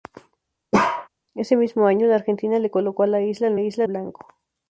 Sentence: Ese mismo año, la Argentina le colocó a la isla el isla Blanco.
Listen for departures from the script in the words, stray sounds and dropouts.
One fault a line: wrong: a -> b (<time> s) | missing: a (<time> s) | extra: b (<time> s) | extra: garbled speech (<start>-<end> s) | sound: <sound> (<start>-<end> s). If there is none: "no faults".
sound: bark (0.7-1.1 s)